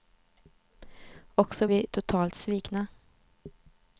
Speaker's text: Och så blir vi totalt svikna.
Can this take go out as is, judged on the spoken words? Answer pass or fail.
fail